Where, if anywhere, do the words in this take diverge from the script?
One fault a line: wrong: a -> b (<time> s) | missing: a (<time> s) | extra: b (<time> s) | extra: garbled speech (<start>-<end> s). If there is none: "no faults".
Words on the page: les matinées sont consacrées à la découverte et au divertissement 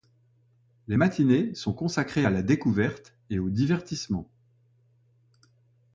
no faults